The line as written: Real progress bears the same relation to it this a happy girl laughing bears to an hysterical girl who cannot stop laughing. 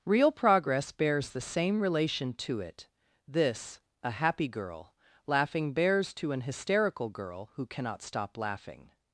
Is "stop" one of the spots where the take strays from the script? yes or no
no